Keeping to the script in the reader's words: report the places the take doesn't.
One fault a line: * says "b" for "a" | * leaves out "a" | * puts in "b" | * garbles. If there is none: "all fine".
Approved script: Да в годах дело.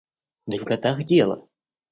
all fine